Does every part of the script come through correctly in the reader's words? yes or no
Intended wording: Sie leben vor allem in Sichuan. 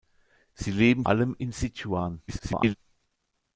no